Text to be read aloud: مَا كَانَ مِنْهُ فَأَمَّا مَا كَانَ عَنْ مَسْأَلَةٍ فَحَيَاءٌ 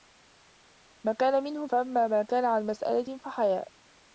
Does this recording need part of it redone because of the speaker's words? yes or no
no